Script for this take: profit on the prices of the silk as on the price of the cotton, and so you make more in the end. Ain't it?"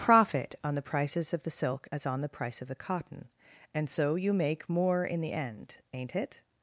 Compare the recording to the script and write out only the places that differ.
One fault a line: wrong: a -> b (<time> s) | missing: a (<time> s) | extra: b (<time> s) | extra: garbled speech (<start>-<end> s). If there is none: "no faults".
no faults